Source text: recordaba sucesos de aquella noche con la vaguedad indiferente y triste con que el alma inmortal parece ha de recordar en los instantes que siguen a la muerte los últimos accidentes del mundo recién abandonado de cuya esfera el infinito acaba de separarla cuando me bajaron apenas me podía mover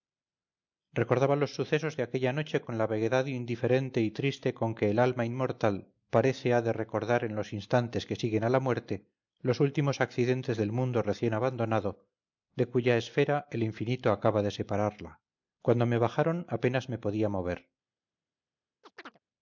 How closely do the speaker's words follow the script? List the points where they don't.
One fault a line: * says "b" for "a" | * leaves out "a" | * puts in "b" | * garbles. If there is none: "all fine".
* puts in "los"